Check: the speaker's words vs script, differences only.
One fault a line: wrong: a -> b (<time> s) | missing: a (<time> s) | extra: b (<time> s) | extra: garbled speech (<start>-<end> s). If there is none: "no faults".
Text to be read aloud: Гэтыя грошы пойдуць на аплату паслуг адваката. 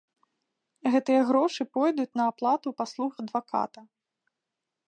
no faults